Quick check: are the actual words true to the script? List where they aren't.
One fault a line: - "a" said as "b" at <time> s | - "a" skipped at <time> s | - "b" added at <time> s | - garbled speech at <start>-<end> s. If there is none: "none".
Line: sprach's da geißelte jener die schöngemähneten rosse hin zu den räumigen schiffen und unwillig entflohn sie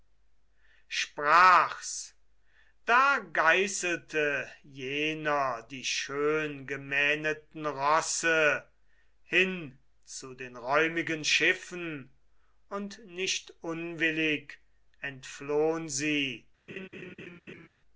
- "nicht" added at 13.1 s